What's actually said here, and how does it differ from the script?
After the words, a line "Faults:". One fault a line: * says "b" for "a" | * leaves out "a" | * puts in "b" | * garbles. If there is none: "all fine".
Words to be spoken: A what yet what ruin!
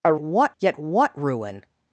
A what yet what ruin!
Faults:
all fine